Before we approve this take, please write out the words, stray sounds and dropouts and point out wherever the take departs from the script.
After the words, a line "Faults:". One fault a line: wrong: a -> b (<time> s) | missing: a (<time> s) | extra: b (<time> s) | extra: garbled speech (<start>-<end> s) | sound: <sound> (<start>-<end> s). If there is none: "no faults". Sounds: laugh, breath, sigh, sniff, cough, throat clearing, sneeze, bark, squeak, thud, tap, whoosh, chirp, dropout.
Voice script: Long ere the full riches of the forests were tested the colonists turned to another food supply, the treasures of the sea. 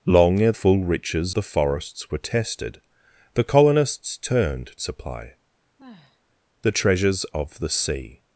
Long ere full riches the forests were tested the colonists turned supply, the treasures of the sea.
Faults:
missing: the (0.5 s)
missing: of (1.3 s)
missing: to another food (4.7 s)
sound: sigh (5.8-6.2 s)